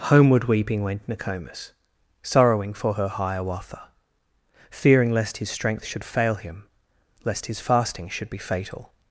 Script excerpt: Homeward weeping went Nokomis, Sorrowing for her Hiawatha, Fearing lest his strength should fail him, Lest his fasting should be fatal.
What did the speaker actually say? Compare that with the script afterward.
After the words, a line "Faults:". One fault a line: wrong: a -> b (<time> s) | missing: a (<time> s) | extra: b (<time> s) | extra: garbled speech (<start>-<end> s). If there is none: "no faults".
Homeward weeping went Nokomis, Sorrowing for her Hiawatha, Fearing lest his strength should fail him, Lest his fasting should be fatal.
Faults:
no faults